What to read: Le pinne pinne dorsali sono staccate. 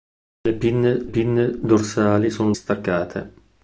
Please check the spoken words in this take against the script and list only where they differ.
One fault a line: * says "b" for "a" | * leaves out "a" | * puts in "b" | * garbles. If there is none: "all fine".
all fine